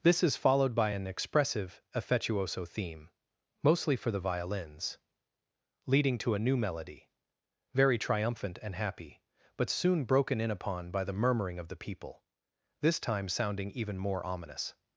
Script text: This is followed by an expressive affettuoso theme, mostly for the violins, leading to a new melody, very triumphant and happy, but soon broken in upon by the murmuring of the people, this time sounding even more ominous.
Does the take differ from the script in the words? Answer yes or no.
no